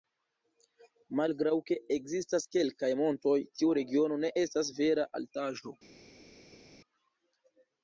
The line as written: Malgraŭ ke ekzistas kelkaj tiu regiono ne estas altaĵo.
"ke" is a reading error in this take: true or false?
false